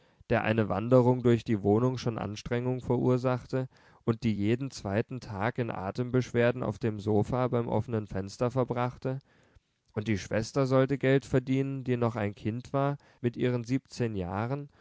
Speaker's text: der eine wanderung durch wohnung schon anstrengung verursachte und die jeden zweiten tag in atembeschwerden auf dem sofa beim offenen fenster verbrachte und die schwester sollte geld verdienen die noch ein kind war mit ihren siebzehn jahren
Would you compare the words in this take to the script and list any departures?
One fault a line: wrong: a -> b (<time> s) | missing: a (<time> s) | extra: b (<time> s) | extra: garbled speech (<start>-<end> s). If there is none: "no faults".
extra: die (1.4 s)